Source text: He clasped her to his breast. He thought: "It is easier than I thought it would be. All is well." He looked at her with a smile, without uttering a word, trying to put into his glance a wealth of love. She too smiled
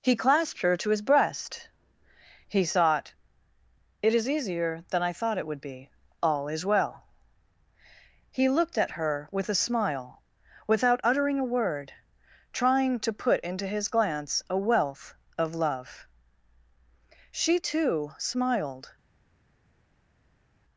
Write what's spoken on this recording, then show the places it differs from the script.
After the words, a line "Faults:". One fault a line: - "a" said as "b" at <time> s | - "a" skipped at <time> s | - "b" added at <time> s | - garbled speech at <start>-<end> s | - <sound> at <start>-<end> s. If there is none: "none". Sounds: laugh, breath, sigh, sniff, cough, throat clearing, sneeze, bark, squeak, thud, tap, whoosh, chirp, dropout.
He clasped her to his breast. He thought: "It is easier than I thought it would be. All is well." He looked at her with a smile, without uttering a word, trying to put into his glance a wealth of love. She too smiled
Faults:
none